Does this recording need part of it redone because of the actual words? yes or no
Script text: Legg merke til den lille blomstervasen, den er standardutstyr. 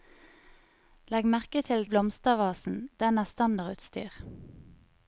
yes